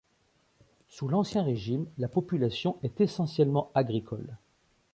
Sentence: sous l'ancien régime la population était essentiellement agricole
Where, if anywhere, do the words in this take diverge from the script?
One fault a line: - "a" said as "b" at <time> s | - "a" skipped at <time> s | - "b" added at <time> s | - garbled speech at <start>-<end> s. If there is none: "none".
- "était" said as "est" at 2.8 s